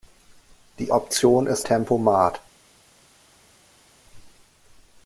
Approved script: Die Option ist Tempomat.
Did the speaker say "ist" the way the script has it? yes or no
yes